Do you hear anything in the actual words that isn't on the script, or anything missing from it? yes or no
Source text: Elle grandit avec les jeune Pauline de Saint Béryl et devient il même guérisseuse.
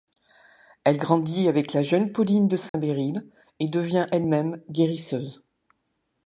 yes